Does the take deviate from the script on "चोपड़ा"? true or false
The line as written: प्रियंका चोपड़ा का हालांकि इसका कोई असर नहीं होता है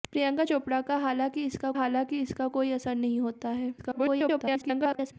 false